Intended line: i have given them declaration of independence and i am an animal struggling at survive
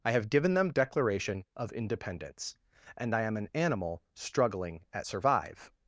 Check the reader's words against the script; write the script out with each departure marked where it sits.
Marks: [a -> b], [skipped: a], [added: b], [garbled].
i have given them declaration of independence and i am an animal struggling at survive